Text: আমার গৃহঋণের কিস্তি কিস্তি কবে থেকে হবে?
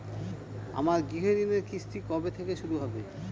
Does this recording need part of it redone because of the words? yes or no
yes